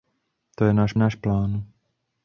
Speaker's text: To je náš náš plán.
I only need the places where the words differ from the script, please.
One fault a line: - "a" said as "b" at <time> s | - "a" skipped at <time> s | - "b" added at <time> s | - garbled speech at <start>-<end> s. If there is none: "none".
none